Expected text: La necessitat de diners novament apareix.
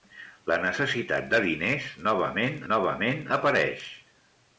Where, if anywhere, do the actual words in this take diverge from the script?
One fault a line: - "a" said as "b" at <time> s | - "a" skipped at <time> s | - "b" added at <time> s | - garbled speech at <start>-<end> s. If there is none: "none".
- "novament" added at 2.7 s